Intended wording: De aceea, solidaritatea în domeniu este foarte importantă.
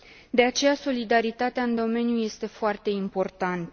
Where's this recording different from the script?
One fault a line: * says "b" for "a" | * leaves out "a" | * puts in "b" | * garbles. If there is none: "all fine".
all fine